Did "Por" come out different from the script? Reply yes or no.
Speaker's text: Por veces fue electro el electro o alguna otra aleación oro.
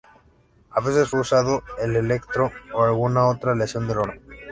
yes